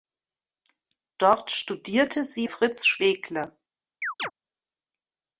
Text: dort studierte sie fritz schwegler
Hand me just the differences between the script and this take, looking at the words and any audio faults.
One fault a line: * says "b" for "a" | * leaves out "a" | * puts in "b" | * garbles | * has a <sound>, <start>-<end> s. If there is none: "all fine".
* has a chirp, 4.0-4.3 s